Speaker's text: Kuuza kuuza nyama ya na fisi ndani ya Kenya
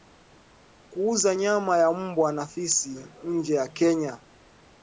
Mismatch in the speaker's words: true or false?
true